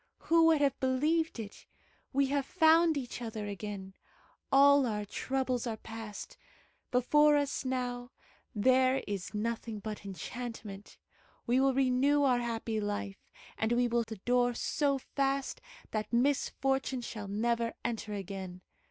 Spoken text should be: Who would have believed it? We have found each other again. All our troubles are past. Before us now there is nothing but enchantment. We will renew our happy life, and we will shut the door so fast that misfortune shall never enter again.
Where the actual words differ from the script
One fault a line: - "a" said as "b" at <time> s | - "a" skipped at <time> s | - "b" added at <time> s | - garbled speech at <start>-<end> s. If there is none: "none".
- "shut" skipped at 14.0 s